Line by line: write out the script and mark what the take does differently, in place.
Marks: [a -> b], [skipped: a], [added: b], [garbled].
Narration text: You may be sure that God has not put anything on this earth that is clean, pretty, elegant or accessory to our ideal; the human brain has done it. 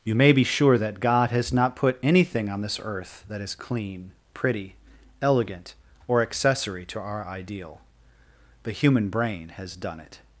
You may be sure that God has not put anything on this earth that is clean, pretty, elegant or accessory to our ideal; the human brain has done it.